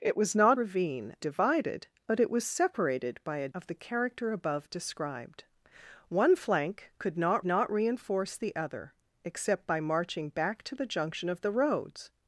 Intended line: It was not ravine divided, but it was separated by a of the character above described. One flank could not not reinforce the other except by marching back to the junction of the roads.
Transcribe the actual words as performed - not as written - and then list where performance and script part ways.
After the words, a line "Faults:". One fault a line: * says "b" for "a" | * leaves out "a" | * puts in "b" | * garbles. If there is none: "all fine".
It was not ravine divided, but it was separated by a of the character above described. One flank could not not reinforce the other except by marching back to the junction of the roads.
Faults:
all fine